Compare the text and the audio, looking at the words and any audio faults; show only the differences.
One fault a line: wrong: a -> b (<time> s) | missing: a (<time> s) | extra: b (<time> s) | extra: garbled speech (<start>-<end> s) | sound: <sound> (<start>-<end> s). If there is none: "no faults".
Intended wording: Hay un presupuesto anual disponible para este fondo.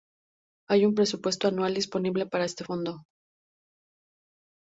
no faults